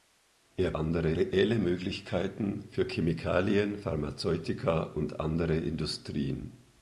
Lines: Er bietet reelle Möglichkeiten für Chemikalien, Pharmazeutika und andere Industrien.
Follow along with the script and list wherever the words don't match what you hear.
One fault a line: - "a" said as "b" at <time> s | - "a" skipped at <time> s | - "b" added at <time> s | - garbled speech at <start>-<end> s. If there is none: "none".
- "bietet" said as "andere" at 0.7 s